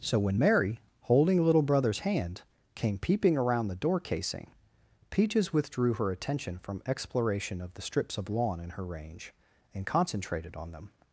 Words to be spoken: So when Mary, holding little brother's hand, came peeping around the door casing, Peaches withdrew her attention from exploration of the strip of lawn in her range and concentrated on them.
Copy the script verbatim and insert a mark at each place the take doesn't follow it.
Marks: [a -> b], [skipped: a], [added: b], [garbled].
So when Mary, holding little brother's hand, came peeping around the door casing, Peaches withdrew her attention from exploration of the [strip -> strips] of lawn in her range and concentrated on them.